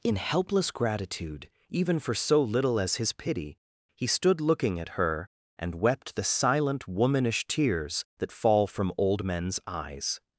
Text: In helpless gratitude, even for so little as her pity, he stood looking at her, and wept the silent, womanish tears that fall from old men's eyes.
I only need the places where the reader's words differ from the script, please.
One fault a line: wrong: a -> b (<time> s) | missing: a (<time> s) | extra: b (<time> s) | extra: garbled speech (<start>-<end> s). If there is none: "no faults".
wrong: her -> his (3.0 s)